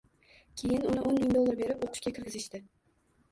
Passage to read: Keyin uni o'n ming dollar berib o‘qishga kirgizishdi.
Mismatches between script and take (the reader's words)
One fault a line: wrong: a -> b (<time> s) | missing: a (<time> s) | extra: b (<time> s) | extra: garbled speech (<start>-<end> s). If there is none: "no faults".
no faults